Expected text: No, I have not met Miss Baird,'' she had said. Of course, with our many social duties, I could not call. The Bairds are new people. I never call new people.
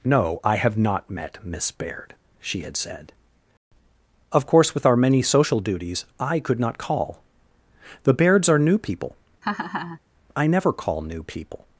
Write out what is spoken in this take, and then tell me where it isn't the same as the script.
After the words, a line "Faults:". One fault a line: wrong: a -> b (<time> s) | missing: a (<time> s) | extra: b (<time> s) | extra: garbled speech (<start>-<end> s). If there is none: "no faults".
No, I have not met Miss Baird,'' she had said. Of course, with our many social duties, I could not call. The Bairds are new people. I never call new people.
Faults:
no faults